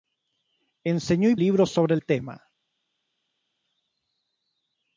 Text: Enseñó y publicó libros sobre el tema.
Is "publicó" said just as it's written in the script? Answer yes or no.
no